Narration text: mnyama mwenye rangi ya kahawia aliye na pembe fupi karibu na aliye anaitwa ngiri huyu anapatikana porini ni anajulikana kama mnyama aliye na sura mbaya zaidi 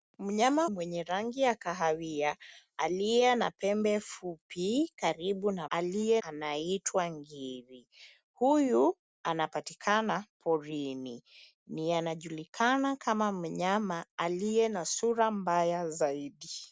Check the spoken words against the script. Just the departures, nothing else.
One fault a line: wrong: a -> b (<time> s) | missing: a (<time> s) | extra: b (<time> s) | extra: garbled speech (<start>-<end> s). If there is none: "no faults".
no faults